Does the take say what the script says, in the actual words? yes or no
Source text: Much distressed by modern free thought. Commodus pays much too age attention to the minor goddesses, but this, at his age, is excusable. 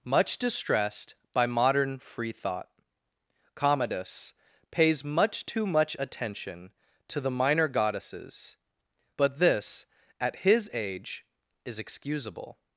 no